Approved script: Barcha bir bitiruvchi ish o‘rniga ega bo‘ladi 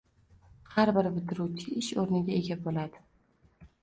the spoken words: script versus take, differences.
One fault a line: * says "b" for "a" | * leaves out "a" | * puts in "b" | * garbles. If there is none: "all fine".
* says "Har" for "Barcha"